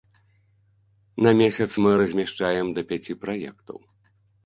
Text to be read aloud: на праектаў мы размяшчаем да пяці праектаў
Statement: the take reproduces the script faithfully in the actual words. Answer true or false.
false